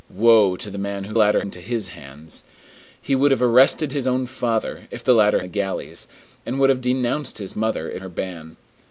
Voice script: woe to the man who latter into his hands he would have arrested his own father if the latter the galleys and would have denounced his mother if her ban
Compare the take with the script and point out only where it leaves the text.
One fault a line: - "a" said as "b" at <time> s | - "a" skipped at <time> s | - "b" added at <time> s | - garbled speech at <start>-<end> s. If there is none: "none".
none